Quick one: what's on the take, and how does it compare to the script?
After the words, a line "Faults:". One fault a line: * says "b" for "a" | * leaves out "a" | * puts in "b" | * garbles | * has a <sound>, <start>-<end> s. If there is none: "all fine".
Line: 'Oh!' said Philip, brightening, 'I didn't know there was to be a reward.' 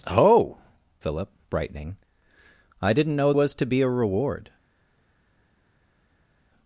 'Oh!' Philip, brightening, 'I didn't know was to be a reward.'
Faults:
* leaves out "said"
* leaves out "there"